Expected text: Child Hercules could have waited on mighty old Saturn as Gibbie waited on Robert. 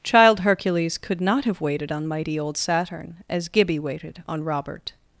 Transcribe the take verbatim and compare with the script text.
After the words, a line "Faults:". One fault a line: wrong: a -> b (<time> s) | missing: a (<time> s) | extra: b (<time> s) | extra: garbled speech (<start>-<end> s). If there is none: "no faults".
Child Hercules could not have waited on mighty old Saturn as Gibbie waited on Robert.
Faults:
extra: not (1.2 s)